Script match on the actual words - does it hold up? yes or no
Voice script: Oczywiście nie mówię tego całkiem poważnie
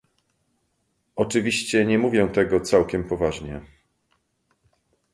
yes